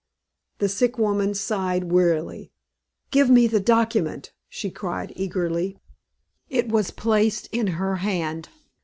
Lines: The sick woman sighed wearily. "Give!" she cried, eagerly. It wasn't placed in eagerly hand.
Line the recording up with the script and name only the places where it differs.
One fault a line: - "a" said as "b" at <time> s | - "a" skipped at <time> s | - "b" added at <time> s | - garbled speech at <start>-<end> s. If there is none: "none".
- "me the document" added at 3.3 s
- "wasn't" said as "was" at 6.7 s
- "eagerly" said as "her" at 7.8 s